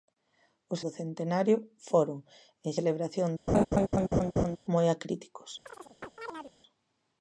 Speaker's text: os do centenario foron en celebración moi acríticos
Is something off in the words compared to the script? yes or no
no